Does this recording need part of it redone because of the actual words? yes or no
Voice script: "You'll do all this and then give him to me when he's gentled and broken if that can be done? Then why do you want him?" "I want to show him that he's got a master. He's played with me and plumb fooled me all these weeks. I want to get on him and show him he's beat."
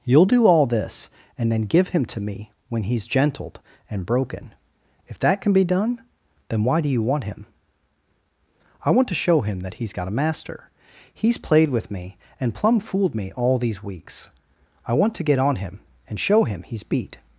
no